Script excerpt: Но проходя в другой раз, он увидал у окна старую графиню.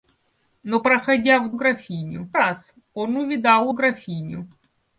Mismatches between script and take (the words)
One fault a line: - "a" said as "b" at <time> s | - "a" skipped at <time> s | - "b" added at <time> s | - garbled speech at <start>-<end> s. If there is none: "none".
- "другой" said as "графиню" at 1.5 s
- "окна старую" skipped at 3.7 s